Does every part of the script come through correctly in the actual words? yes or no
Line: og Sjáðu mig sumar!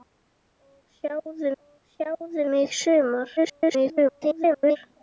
no